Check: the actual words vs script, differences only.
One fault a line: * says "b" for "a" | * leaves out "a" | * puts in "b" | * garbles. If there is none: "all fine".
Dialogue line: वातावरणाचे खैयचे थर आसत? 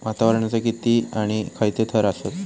* puts in "किती आणि"